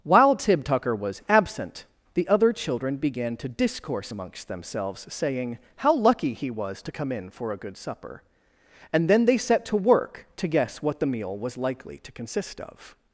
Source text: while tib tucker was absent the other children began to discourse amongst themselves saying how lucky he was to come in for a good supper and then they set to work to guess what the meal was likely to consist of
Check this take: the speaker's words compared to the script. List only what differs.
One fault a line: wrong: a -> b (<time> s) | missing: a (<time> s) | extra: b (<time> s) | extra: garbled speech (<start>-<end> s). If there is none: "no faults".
no faults